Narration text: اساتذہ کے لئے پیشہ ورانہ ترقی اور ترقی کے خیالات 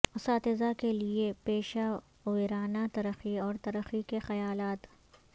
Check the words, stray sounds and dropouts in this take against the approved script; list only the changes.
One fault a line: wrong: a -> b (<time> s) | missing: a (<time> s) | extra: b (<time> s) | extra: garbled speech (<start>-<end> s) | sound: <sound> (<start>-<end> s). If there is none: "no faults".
no faults